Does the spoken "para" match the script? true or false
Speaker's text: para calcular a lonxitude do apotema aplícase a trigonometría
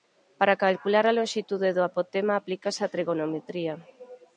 true